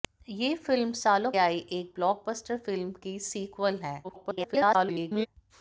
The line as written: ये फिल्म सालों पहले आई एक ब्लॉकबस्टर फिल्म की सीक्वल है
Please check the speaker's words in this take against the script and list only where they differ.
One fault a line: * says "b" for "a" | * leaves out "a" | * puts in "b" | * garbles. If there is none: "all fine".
* leaves out "पहले"
* garbles